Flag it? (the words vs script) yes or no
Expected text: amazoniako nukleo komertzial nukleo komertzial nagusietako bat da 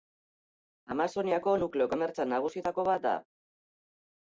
yes